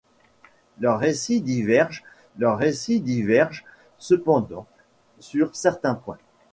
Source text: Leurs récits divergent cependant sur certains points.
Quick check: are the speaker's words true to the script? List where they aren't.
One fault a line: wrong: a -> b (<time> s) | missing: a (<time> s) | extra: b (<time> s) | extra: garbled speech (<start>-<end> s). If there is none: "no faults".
extra: leurs récits divergent (2.4 s)